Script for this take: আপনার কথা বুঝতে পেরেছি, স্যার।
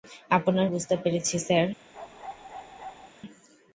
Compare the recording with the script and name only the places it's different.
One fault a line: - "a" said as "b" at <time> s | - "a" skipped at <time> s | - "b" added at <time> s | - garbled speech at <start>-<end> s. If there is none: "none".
- "কথা" skipped at 0.7 s